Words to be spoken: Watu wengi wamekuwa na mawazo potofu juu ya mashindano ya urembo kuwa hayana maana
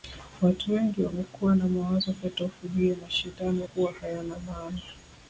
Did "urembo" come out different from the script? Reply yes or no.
yes